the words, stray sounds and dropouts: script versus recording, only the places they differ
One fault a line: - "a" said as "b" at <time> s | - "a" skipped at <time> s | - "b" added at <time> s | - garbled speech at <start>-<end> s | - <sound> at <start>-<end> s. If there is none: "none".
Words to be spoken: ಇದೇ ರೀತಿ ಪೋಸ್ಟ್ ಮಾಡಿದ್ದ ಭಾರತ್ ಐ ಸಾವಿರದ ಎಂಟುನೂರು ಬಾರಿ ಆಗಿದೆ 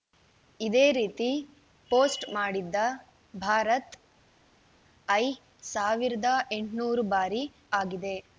none